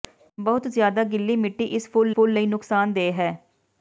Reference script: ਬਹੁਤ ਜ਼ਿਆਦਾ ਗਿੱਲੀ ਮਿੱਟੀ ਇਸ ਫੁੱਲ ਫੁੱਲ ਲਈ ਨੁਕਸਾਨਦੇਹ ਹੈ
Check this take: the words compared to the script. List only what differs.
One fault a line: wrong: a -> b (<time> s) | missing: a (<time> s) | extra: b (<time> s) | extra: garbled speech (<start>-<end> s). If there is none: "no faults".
no faults